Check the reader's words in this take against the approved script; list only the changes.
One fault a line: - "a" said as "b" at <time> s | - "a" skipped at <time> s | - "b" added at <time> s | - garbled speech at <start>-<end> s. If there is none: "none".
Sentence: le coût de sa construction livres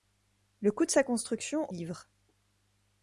none